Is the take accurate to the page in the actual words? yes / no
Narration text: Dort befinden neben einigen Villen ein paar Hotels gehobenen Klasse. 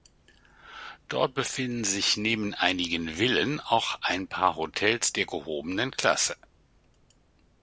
no